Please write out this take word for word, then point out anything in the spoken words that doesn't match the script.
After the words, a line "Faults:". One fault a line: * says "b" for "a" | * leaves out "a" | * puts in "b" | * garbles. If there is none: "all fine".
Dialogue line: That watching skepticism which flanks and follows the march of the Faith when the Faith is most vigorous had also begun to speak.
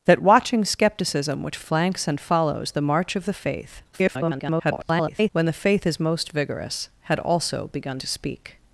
That watching skepticism which flanks and follows the march of the Faith [garbled] when the Faith is most vigorous had also begun to speak.
Faults:
* garbles